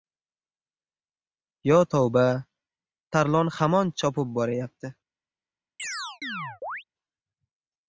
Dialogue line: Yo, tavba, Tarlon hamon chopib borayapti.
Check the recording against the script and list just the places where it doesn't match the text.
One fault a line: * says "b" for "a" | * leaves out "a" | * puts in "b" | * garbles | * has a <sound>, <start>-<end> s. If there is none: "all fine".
* has a chirp, 5.8-6.8 s